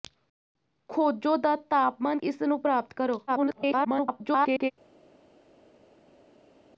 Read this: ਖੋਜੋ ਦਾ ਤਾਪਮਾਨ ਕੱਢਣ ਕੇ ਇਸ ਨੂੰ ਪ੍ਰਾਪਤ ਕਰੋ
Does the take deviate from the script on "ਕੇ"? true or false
true